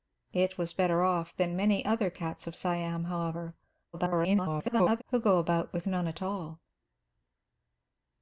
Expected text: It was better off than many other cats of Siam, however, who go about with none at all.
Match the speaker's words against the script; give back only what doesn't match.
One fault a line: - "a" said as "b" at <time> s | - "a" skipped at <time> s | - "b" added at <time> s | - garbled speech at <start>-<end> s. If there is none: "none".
- garbled speech at 3.9-5.0 s